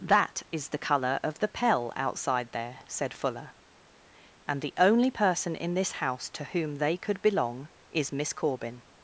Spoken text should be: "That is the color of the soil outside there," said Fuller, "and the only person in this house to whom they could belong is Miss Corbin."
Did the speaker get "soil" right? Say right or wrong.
wrong